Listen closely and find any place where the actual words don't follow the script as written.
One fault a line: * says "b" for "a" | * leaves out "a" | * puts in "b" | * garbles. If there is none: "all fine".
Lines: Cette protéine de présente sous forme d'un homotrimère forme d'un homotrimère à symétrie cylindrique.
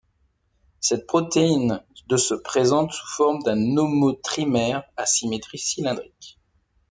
* puts in "se"
* leaves out "forme d'un homotrimère"